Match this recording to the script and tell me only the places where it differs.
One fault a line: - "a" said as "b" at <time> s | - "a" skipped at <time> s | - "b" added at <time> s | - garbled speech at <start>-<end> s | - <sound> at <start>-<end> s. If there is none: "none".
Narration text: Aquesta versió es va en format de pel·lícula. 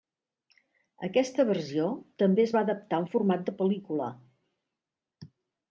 - "també" added at 2.2 s
- "adaptar" added at 2.7 s